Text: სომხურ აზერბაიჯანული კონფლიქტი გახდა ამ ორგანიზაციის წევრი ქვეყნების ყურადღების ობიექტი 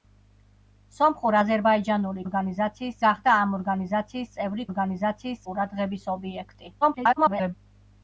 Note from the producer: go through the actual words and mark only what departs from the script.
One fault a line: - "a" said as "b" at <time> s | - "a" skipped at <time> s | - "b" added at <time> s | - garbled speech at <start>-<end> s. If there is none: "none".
- "კონფლიქტი" said as "ორგანიზაციის" at 2.3 s
- "ქვეყნების" said as "ორგანიზაციის" at 4.7 s
- garbled speech at 6.8-7.5 s